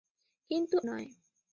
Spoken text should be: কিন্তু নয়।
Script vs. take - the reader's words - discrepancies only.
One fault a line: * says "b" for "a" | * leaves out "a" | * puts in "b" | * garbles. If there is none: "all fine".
all fine